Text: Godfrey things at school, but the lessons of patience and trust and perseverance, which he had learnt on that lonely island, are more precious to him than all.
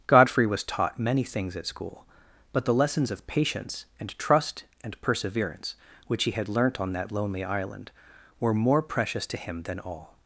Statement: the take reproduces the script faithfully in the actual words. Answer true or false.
false